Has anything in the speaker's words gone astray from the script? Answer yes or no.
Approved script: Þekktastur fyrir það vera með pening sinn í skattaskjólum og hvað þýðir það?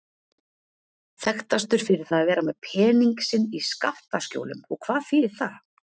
yes